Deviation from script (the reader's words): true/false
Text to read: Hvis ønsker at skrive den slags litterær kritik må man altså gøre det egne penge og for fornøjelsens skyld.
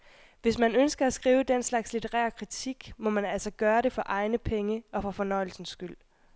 true